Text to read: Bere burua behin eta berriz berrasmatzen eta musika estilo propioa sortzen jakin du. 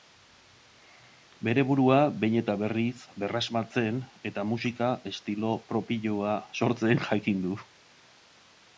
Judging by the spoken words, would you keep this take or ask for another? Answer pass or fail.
pass